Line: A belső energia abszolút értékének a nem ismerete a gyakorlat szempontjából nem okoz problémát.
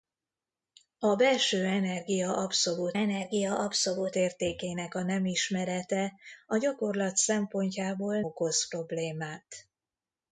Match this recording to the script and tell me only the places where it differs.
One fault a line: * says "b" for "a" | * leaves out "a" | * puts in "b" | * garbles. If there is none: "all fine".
* puts in "energia abszolút"
* leaves out "nem"